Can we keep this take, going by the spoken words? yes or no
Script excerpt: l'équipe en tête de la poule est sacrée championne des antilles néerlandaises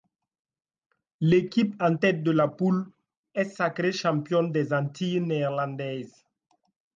yes